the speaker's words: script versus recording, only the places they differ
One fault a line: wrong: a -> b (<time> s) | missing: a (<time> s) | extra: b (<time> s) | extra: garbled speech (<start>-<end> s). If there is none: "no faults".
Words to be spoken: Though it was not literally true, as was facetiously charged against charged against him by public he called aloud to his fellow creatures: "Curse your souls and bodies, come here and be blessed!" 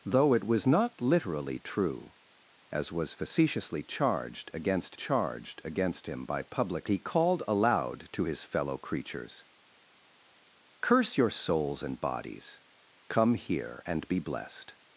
no faults